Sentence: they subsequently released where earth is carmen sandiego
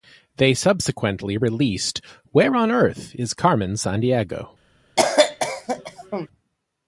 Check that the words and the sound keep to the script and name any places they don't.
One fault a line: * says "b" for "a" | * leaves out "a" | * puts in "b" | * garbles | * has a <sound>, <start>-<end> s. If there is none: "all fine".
* puts in "on"
* has a cough, 5.0-6.3 s